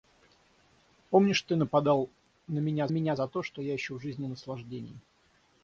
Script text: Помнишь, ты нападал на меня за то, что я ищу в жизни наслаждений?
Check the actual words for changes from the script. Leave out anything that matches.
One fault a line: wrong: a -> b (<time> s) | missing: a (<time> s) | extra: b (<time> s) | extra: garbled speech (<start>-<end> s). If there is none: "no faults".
extra: меня (2.9 s)